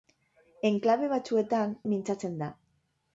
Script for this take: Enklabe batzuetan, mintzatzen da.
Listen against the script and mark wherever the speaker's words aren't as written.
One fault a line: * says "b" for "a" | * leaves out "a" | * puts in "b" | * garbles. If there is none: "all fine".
all fine